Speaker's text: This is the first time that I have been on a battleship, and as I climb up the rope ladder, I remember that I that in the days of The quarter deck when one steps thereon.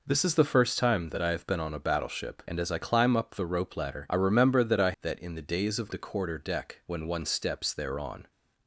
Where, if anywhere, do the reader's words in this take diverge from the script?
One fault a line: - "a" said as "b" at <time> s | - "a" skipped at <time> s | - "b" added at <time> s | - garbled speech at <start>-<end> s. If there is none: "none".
none